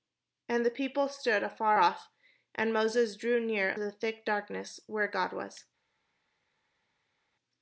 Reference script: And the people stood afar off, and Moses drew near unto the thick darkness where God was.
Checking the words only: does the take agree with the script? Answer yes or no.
no